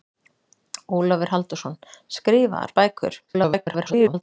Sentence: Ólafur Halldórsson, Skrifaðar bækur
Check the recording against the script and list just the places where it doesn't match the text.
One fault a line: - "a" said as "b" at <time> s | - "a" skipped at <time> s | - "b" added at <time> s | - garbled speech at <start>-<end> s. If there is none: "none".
- garbled speech at 3.3-4.2 s